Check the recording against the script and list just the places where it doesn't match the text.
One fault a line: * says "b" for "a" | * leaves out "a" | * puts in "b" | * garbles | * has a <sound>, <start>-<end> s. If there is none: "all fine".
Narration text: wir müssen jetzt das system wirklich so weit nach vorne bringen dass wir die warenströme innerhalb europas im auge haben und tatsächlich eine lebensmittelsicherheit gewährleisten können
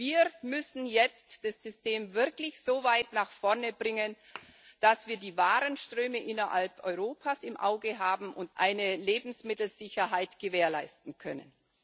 * has a thud, 4.4-4.5 s
* leaves out "tatsächlich"